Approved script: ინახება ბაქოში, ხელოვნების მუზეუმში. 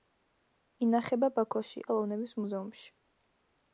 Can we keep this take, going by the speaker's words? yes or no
yes